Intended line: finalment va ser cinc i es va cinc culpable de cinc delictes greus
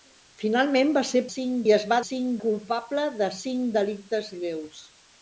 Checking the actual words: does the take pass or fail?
pass